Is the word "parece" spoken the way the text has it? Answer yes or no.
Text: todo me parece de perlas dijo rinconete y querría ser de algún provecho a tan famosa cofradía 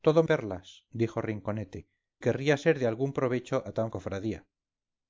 no